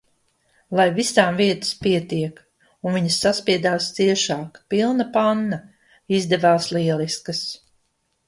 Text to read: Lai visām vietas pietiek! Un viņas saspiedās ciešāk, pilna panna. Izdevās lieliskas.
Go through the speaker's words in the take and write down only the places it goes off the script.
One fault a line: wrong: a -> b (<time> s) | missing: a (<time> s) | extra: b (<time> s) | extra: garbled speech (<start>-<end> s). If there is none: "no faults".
no faults